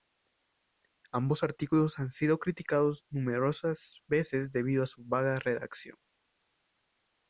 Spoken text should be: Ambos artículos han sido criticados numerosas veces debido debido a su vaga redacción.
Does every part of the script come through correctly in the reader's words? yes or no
no